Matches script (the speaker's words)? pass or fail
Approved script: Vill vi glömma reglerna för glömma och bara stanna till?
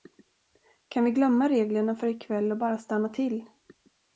fail